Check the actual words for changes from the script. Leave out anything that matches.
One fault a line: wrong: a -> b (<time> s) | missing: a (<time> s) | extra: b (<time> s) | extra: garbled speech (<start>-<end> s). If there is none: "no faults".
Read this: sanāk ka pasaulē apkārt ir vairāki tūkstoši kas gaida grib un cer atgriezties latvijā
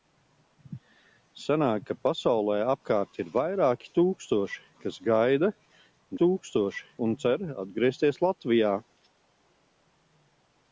wrong: grib -> tūkstoši (6.2 s)